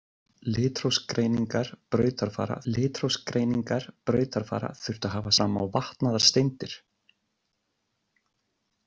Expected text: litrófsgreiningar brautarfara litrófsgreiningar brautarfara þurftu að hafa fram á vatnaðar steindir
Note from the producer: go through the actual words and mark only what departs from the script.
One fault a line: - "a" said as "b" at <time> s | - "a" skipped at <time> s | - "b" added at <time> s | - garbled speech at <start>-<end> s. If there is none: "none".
none